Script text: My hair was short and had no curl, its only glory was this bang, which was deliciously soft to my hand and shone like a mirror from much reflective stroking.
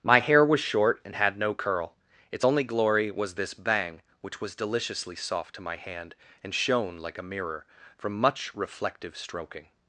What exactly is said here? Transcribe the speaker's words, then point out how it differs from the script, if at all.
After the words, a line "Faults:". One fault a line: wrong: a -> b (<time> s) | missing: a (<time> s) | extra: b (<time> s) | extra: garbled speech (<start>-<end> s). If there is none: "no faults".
My hair was short and had no curl, its only glory was this bang, which was deliciously soft to my hand and shone like a mirror from much reflective stroking.
Faults:
no faults